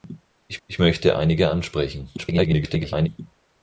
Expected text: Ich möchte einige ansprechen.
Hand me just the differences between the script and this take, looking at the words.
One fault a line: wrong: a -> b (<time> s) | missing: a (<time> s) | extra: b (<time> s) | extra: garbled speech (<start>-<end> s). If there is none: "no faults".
extra: ich (0.7 s)
extra: garbled speech (2.2-3.1 s)